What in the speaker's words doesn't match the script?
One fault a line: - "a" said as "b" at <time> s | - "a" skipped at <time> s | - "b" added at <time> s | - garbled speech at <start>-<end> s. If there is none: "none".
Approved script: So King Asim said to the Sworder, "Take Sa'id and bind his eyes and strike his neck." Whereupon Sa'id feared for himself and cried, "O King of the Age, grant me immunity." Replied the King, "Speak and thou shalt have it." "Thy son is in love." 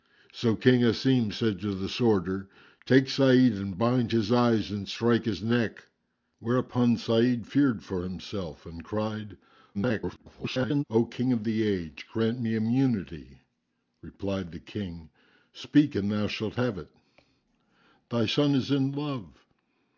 - garbled speech at 9.7-10.8 s